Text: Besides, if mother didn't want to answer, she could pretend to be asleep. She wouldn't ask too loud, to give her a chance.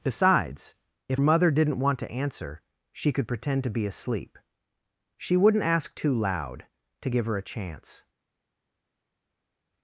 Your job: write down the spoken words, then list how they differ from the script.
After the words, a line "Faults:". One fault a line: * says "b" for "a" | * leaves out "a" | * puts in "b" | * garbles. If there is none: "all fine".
Besides, if mother didn't want to answer, she could pretend to be asleep. She wouldn't ask too loud, to give her a chance.
Faults:
all fine